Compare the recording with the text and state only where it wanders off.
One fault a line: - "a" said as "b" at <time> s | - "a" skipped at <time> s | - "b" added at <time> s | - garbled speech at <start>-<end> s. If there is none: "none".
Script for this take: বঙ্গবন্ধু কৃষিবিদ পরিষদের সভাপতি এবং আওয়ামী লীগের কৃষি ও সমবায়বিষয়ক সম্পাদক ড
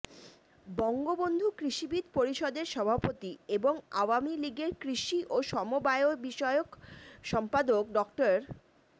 none